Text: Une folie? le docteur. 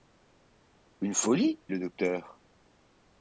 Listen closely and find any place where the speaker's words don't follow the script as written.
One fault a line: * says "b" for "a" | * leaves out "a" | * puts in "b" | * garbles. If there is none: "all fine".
all fine